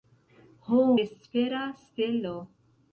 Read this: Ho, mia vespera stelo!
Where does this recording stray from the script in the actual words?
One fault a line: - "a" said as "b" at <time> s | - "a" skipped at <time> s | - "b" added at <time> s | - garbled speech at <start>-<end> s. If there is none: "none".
- "mia" skipped at 0.8 s